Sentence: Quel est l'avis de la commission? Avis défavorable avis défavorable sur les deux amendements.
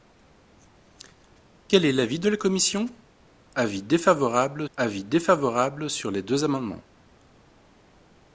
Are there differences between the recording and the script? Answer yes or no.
no